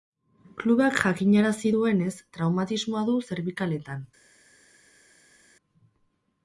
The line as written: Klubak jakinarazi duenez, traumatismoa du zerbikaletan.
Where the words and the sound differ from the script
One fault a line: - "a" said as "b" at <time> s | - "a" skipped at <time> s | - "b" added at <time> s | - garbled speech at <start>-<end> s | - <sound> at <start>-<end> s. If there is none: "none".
none